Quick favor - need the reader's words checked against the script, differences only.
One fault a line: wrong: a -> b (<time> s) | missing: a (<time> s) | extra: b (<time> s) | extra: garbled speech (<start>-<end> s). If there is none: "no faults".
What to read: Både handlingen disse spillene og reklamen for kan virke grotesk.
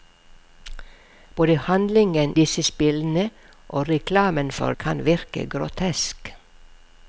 no faults